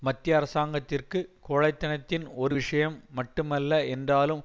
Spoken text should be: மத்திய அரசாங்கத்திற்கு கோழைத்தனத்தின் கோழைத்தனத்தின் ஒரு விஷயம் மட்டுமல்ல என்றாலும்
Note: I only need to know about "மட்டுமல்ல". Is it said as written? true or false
true